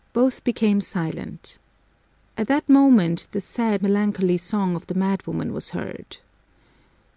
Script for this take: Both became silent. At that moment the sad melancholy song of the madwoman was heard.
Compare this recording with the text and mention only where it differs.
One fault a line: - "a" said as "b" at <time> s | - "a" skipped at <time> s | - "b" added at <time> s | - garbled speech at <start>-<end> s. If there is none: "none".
none